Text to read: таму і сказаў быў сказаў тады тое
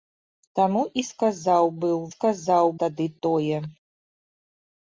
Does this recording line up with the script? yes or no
yes